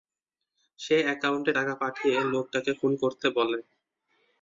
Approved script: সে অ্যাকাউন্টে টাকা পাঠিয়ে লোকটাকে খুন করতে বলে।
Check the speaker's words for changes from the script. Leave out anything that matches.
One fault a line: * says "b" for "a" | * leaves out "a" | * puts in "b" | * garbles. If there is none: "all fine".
all fine